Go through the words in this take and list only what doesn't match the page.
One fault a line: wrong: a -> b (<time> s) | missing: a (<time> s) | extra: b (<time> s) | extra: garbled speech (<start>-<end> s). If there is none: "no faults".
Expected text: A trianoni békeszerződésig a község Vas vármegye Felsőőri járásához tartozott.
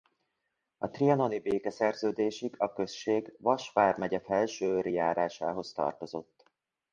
no faults